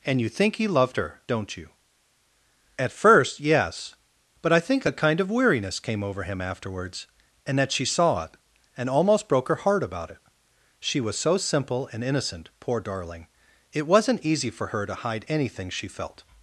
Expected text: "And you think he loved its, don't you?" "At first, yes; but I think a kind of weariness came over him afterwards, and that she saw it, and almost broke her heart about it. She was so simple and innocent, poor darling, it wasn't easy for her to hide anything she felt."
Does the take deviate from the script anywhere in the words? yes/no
yes